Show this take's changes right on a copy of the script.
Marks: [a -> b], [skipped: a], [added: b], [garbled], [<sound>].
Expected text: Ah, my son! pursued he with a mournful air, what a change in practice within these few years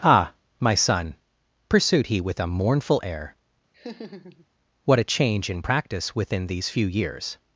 Ah, my son! pursued he with a mournful air, [laugh] what a change in practice within these few years